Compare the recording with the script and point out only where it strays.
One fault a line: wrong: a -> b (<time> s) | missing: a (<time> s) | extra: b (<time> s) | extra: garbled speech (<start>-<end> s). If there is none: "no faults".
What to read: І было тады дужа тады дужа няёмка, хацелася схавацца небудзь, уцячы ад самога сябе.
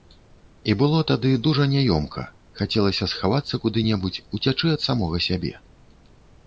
missing: тады дужа (1.7 s)
extra: куды (3.7 s)